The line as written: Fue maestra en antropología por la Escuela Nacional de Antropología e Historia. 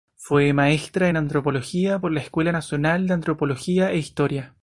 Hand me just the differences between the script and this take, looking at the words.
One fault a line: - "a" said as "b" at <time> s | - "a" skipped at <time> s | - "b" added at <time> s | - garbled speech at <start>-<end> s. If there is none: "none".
none